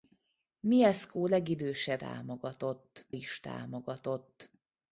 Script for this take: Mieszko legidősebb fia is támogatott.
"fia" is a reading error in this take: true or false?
true